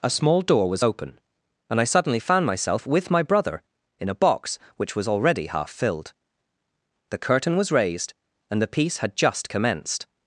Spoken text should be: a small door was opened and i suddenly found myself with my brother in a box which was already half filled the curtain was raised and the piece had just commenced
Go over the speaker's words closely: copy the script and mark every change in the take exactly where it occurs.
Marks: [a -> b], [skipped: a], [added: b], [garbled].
a small door was [opened -> open] and i suddenly found myself with my brother in a box which was already half filled the curtain was raised and the piece had just commenced